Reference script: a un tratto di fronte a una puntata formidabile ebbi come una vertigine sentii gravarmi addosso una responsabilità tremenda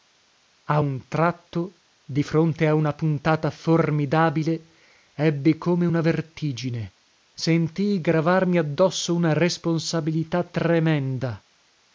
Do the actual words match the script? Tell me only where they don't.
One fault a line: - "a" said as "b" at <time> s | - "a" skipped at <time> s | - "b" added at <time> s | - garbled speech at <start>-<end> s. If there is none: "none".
none